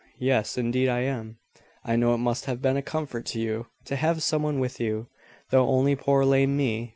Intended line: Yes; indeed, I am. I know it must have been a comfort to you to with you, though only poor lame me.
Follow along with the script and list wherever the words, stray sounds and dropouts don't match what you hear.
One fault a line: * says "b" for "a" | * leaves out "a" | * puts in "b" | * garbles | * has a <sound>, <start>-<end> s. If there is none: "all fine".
* puts in "have some one"